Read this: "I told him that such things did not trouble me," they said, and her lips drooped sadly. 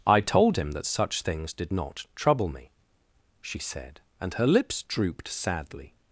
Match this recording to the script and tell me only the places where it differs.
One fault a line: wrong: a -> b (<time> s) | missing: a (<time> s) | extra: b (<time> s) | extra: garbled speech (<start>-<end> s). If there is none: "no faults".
wrong: they -> she (3.4 s)